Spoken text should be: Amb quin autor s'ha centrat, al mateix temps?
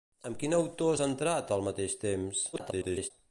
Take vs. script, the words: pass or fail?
fail